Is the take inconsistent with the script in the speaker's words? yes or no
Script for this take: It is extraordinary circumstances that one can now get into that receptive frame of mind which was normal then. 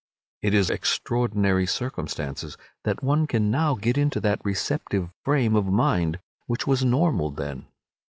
no